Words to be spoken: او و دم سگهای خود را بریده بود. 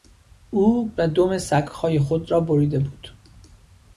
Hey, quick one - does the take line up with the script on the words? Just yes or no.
yes